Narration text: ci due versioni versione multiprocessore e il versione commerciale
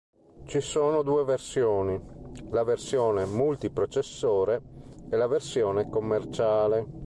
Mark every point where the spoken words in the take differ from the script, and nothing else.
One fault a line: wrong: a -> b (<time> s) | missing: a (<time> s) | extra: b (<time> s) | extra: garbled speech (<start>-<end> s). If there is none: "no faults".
extra: sono (0.6 s)
extra: la (2.5 s)
wrong: il -> la (5.2 s)